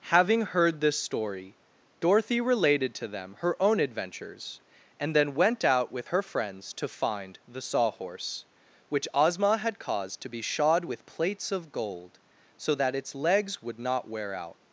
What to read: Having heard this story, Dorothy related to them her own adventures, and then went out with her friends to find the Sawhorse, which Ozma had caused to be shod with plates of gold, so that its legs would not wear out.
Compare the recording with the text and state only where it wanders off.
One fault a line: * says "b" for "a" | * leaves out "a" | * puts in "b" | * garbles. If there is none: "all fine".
all fine